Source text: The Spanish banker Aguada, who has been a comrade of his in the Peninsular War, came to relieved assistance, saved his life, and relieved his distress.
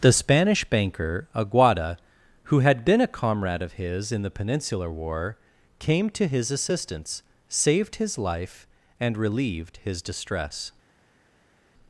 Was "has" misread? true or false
true